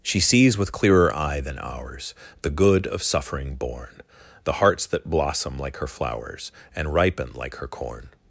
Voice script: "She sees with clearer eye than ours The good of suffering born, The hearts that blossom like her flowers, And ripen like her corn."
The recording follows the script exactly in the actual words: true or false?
true